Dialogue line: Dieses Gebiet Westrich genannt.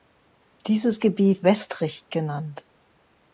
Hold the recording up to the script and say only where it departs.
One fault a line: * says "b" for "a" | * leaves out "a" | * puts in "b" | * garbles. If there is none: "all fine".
all fine